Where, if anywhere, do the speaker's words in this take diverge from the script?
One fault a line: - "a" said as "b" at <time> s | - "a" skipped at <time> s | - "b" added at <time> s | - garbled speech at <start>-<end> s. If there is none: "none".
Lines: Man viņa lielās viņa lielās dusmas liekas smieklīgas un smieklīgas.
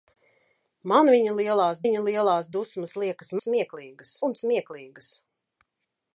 none